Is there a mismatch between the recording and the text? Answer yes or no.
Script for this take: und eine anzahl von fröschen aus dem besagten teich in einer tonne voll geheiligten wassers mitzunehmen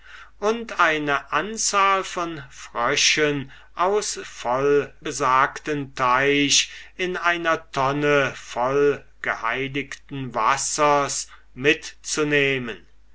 yes